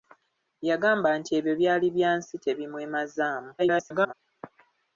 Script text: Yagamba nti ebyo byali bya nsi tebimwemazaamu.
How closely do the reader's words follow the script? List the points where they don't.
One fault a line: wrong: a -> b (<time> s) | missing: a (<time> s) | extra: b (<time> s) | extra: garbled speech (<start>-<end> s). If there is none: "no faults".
extra: garbled speech (3.6-4.1 s)